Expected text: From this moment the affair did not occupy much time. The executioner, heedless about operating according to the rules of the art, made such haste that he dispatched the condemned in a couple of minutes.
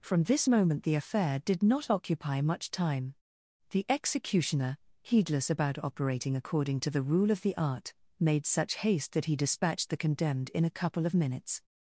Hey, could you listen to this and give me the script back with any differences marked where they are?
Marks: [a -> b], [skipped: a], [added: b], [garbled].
From this moment the affair did not occupy much time. The executioner, heedless about operating according to the [rules -> rule] of the art, made such haste that he dispatched the condemned in a couple of minutes.